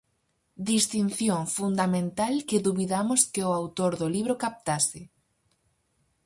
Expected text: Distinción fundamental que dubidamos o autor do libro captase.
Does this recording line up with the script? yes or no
no